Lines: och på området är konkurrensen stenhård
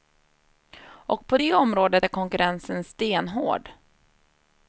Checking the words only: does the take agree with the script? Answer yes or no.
no